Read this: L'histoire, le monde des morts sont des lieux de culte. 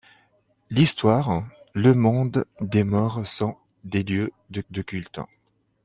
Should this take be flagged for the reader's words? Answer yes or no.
yes